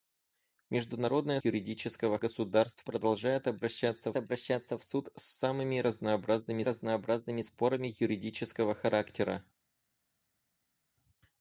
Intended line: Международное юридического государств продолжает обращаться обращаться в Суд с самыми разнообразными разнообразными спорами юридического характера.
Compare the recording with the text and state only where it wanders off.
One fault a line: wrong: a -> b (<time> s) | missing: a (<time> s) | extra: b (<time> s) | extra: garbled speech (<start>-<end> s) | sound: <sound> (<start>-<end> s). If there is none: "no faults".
no faults